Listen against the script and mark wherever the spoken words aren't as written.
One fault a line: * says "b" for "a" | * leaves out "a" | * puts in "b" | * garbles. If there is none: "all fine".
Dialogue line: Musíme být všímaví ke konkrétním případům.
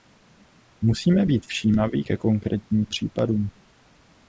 all fine